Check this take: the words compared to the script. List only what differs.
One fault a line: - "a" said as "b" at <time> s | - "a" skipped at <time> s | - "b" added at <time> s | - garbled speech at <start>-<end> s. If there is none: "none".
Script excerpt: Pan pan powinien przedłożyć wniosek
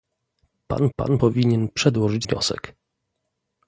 none